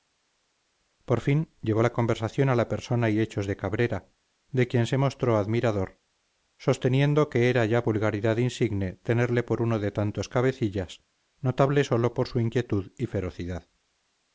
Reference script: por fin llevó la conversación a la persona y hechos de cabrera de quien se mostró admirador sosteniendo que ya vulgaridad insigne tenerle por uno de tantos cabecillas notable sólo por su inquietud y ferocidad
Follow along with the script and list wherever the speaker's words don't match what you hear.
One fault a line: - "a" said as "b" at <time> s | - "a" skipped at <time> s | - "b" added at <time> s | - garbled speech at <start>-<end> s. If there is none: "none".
- "era" added at 7.5 s